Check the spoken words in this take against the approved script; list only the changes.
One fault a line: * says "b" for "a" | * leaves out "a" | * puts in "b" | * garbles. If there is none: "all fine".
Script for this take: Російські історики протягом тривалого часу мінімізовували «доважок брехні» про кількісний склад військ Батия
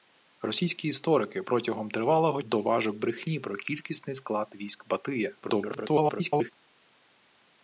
* leaves out "часу мінімізовували"
* garbles